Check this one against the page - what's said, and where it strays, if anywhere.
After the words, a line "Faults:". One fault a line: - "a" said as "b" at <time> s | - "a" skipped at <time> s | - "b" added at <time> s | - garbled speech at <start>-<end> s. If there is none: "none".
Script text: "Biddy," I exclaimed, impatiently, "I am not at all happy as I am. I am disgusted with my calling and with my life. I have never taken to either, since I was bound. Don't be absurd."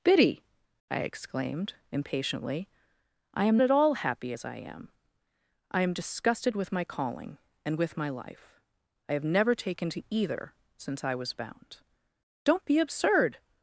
"Biddy," I exclaimed, impatiently, "I am at all happy as I am. I am disgusted with my calling and with my life. I have never taken to either, since I was bound. Don't be absurd."
Faults:
- "not" skipped at 3.6 s